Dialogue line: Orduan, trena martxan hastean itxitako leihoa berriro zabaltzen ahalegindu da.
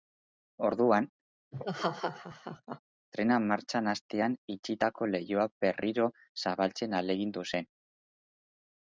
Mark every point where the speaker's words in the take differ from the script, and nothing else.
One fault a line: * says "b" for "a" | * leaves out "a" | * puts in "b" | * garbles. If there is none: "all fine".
* says "zen" for "da"